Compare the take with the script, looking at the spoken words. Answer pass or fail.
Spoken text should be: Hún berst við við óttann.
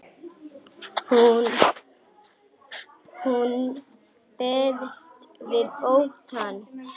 fail